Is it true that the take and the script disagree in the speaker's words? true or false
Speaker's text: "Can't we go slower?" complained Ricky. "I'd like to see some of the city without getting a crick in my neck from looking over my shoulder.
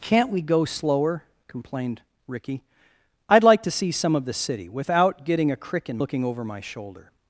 true